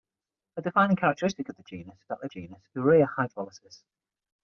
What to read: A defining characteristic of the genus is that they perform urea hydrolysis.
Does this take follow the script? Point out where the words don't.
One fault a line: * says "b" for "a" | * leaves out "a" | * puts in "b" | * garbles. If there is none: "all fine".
* leaves out "is"
* says "genus" for "perform"